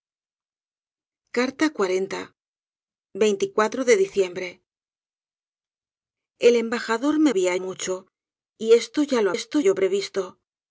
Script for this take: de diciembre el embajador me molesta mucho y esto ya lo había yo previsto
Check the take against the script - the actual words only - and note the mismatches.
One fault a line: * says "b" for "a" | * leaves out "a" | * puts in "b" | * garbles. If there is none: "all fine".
* says "había" for "molesta"
* says "esto" for "había"